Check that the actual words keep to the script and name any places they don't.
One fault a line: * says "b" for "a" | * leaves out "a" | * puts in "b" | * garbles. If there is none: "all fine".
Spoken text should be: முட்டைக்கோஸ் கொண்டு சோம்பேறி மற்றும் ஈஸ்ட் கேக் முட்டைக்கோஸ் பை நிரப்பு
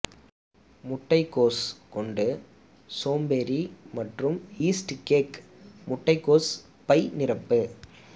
all fine